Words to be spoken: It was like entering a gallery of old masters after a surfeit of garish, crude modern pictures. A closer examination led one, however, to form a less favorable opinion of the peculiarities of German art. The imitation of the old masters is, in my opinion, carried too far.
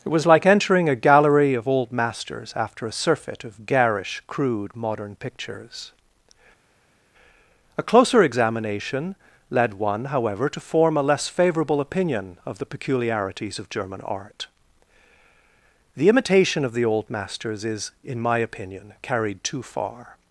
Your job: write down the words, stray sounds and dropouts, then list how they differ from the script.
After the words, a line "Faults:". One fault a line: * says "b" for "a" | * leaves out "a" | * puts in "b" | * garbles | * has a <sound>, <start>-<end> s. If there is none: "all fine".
It was like entering a gallery of old masters after a surfeit of garish, crude modern pictures. A closer examination led one, however, to form a less favorable opinion of the peculiarities of German art. The imitation of the old masters is, in my opinion, carried too far.
Faults:
all fine